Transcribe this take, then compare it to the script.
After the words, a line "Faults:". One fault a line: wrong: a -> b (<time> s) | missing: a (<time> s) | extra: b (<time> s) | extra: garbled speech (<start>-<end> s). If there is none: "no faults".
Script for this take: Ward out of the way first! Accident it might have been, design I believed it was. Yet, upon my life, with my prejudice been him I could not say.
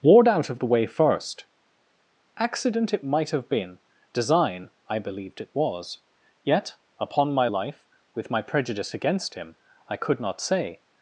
Ward out of the way first! Accident it might have been, design I believed it was. Yet, upon my life, with my prejudice against him I could not say.
Faults:
wrong: been -> against (8.9 s)